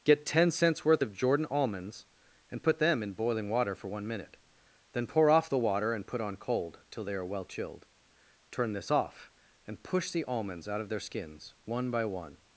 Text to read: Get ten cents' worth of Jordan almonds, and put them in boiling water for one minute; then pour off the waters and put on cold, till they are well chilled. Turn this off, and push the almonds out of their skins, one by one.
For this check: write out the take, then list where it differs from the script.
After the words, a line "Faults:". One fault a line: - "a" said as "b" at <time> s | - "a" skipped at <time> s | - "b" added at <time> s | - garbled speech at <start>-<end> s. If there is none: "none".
Get ten cents' worth of Jordan almonds, and put them in boiling water for one minute; then pour off the water and put on cold, till they are well chilled. Turn this off, and push the almonds out of their skins, one by one.
Faults:
- "waters" said as "water" at 5.6 s